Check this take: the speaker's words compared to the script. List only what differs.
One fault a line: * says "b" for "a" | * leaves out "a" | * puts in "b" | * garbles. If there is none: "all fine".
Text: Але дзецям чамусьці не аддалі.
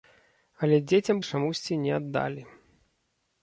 all fine